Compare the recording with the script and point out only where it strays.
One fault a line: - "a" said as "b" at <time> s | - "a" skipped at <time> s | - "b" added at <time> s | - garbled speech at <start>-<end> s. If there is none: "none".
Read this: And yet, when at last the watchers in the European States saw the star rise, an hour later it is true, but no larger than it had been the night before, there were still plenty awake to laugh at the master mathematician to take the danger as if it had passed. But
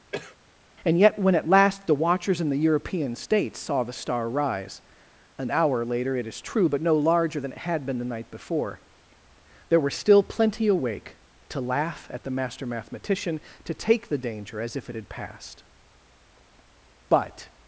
none